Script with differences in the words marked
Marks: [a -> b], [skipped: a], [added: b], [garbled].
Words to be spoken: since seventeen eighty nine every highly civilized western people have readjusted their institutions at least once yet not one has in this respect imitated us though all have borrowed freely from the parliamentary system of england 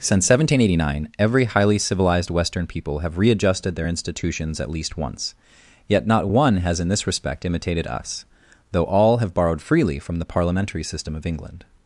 since seventeen eighty nine every highly civilized western people have readjusted their institutions at least once yet not one has in this respect imitated us though all have borrowed freely from the parliamentary system of england